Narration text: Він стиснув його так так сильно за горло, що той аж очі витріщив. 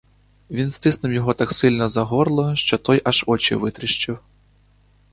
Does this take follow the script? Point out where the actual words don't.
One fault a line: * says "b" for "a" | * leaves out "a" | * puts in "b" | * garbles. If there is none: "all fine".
* leaves out "так"